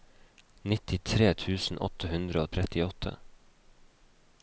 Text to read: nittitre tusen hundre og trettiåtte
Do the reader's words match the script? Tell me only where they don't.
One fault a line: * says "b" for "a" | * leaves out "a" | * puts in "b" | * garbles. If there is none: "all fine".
* puts in "åtte"